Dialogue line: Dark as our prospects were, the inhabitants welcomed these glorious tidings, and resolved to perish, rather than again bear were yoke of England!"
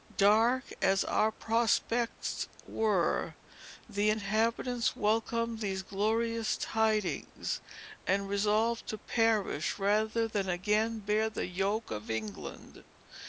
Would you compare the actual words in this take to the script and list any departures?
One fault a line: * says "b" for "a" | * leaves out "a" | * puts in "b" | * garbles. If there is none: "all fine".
* says "the" for "were"